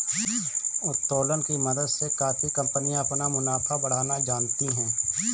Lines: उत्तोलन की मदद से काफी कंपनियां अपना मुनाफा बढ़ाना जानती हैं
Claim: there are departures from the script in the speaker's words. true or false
false